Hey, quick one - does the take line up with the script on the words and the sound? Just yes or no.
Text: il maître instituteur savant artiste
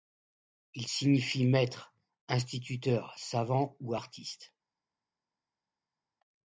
no